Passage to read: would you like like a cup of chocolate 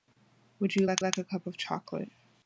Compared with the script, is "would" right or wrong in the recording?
right